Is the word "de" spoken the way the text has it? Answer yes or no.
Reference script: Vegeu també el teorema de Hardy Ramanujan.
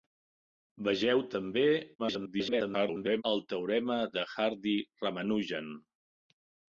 yes